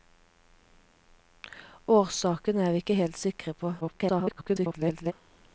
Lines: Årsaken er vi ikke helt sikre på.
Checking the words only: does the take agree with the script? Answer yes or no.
no